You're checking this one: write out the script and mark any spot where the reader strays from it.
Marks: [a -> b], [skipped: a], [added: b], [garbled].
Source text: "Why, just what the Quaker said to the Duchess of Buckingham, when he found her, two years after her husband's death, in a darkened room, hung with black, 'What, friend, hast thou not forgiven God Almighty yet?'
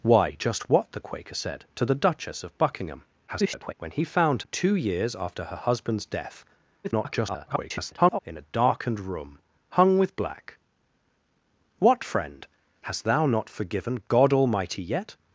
"Why, just what the Quaker said to the Duchess of Buckingham, [garbled] when he found [skipped: her,] two years after her husband's death, [garbled] in a darkened room, hung with black, 'What, friend, hast thou not forgiven God Almighty yet?'